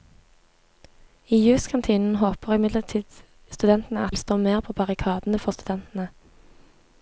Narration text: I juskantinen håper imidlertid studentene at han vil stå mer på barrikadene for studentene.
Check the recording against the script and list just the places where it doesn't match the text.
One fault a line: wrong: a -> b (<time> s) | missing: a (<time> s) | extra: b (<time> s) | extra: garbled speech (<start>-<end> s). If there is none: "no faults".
missing: han (4.2 s)